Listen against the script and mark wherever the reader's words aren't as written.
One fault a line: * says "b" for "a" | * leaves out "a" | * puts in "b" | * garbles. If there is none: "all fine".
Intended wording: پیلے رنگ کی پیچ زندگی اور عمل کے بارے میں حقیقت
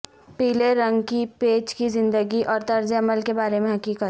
* puts in "کی"
* puts in "طرز"